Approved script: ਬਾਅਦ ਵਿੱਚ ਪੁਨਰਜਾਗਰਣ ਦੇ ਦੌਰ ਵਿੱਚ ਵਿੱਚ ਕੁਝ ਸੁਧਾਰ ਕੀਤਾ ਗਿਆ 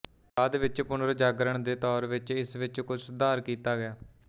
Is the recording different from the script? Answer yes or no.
yes